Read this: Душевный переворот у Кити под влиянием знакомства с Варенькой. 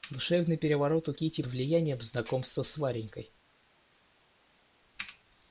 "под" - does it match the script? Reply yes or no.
no